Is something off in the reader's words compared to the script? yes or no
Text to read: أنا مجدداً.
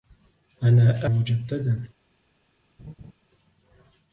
no